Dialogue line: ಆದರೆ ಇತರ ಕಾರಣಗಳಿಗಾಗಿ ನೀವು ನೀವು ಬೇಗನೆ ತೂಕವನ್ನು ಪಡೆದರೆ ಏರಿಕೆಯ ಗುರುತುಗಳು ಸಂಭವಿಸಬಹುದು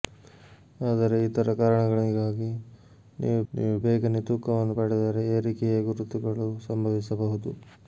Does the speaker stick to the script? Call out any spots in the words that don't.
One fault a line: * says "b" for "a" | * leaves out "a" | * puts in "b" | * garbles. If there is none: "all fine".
all fine